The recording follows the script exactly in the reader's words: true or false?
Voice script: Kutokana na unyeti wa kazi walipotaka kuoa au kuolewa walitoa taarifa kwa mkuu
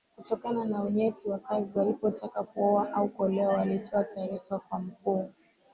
true